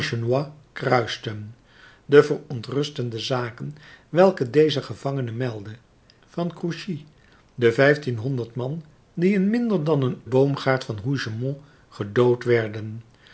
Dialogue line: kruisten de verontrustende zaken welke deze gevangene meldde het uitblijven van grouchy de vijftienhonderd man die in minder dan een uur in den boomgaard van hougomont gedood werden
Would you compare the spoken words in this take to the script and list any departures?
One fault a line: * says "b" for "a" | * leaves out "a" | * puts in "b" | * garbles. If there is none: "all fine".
* leaves out "het uitblijven"
* leaves out "uur in den"